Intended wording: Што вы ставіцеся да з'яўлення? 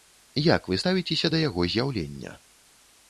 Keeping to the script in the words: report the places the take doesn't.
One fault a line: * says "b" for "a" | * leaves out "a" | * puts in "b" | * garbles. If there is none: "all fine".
* says "Як" for "Што"
* puts in "яго"